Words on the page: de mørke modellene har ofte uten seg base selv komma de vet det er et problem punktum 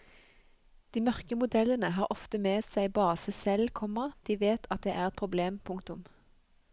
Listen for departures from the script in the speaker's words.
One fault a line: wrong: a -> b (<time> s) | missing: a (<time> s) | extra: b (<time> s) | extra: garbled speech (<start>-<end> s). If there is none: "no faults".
wrong: uten -> med (2.5 s)
extra: at (4.8 s)